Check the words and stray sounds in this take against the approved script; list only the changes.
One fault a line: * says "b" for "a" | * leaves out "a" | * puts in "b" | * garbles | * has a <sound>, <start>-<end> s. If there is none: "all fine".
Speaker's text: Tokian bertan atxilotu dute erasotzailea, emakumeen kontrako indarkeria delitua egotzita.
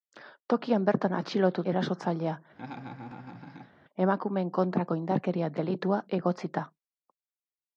* leaves out "dute"
* has a laugh, 2.5-3.7 s